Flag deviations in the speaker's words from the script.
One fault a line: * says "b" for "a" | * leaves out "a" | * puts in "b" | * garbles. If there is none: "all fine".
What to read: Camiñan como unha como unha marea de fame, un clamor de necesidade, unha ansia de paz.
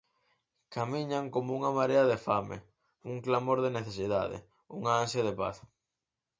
* leaves out "como unha"